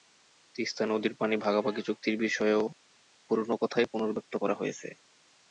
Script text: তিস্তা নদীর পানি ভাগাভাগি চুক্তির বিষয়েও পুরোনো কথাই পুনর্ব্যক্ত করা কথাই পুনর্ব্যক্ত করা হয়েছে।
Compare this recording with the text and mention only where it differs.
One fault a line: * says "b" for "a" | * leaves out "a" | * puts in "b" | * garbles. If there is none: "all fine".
* leaves out "কথাই পুনর্ব্যক্ত করা"